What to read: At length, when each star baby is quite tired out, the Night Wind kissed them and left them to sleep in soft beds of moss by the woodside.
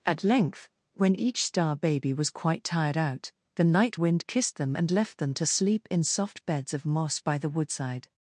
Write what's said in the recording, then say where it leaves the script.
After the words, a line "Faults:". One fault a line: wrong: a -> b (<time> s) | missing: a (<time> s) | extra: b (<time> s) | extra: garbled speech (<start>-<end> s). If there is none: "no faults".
At length, when each star baby was quite tired out, the Night Wind kissed them and left them to sleep in soft beds of moss by the woodside.
Faults:
wrong: is -> was (2.1 s)